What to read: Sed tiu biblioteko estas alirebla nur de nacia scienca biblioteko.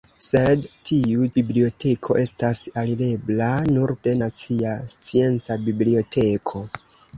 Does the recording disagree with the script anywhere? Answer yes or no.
no